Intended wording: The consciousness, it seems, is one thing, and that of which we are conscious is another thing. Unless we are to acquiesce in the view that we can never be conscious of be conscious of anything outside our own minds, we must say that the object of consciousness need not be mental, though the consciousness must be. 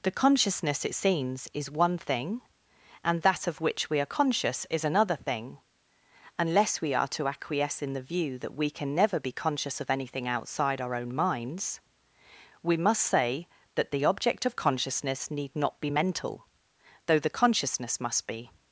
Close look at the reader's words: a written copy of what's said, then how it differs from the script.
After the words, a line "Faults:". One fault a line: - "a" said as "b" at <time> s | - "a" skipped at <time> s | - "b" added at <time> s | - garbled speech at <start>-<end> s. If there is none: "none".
The consciousness, it seems, is one thing, and that of which we are conscious is another thing. Unless we are to acquiesce in the view that we can never be conscious of anything outside our own minds, we must say that the object of consciousness need not be mental, though the consciousness must be.
Faults:
- "be conscious of" skipped at 9.9 s